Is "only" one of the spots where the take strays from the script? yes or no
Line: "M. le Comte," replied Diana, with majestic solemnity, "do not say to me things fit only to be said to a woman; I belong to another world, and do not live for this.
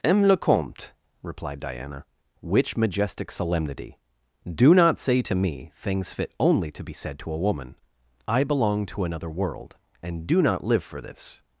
no